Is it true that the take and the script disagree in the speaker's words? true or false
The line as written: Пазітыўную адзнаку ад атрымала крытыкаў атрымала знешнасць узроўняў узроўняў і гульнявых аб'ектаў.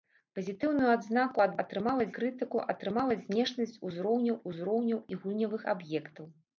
false